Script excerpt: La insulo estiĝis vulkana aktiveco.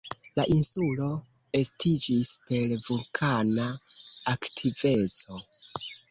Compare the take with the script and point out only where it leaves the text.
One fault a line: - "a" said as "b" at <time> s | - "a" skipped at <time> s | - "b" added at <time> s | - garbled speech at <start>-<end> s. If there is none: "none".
- "per" added at 2.5 s